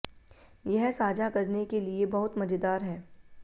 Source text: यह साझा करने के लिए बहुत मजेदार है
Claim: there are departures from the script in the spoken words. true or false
false